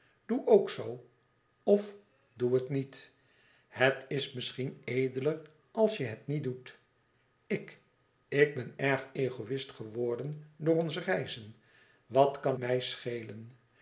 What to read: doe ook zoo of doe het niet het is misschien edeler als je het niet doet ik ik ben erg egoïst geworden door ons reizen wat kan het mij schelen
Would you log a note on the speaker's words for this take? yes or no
yes